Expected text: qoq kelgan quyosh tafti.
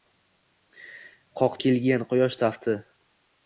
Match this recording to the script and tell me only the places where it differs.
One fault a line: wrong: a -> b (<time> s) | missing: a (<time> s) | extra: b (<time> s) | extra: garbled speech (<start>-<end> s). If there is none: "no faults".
no faults